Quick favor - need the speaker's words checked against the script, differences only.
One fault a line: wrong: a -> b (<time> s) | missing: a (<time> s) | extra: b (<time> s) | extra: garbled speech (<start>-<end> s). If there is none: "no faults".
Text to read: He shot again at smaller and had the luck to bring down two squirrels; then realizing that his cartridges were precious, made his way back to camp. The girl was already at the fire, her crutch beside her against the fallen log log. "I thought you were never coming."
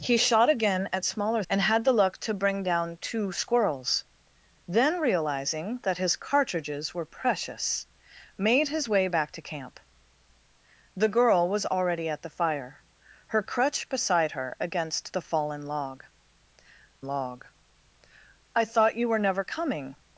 no faults